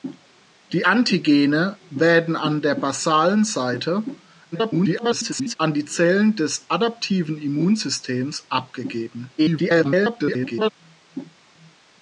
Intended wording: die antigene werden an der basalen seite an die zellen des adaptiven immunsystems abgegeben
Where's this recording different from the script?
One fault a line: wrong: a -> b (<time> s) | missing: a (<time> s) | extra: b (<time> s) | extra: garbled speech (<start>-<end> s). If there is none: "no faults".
extra: garbled speech (4.5-5.6 s)
extra: garbled speech (9.4-10.7 s)